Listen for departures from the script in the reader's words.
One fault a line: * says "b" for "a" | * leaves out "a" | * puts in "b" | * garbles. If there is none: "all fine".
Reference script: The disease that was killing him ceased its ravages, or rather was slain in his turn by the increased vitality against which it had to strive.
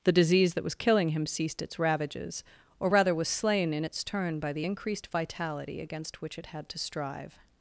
* says "its" for "his"